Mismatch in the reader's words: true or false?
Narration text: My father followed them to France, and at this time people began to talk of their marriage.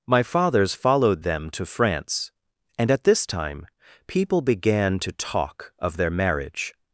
true